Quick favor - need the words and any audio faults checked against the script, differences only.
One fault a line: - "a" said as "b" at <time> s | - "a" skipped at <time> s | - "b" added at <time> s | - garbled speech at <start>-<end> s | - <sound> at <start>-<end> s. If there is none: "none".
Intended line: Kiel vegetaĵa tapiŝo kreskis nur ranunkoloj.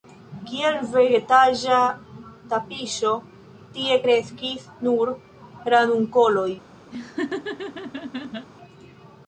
- "tie" added at 3.8 s
- laugh at 6.9-8.5 s